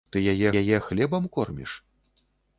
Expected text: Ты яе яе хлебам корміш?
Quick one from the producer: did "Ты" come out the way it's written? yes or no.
yes